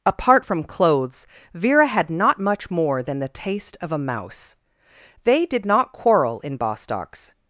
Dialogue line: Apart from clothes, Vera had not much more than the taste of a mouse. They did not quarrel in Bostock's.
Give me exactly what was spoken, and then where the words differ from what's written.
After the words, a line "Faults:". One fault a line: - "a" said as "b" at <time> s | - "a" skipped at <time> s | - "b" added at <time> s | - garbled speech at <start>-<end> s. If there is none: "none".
Apart from clothes, Vera had not much more than the taste of a mouse. They did not quarrel in Bostock's.
Faults:
none